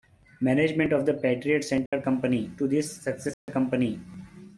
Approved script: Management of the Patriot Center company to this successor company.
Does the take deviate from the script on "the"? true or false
false